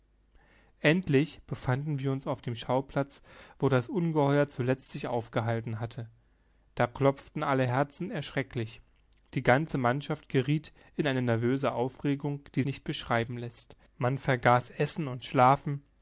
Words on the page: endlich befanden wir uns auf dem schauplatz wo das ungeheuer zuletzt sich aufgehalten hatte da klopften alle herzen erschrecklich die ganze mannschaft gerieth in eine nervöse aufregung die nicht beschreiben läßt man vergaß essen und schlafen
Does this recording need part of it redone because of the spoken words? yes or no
no